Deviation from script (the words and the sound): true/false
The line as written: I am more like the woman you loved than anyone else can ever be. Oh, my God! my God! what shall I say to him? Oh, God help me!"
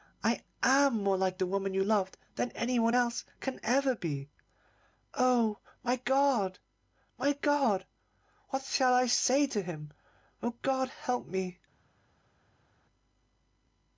false